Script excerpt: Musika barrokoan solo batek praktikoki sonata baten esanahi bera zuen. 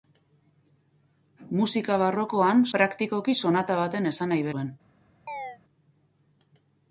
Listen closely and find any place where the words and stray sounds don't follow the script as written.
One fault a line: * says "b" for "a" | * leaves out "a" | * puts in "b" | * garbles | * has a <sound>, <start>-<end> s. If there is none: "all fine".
* leaves out "solo batek"
* leaves out "bera"
* has a chirp, 5.3-5.6 s